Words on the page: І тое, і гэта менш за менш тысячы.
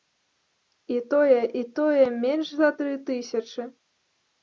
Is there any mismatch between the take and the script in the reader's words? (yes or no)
yes